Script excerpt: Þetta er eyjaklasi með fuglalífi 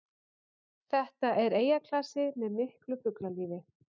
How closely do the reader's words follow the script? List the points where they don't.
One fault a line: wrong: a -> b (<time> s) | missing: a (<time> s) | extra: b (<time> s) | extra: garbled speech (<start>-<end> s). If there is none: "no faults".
extra: miklu (2.6 s)